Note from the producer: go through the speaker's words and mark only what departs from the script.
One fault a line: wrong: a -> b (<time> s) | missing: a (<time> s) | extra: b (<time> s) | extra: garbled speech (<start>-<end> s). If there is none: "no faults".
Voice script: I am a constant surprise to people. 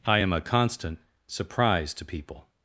no faults